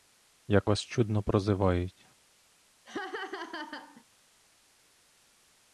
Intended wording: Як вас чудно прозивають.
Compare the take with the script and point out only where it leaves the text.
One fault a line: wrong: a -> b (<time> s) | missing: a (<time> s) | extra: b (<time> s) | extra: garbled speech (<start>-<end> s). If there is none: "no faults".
no faults